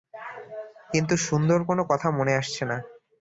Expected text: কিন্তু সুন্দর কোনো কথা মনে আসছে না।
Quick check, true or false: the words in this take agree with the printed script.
true